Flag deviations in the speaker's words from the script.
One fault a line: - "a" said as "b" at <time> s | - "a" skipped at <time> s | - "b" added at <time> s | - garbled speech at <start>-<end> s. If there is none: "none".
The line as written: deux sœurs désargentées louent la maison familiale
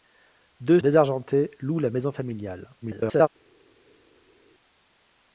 - "sœurs" skipped at 0.8 s
- garbled speech at 2.8-3.3 s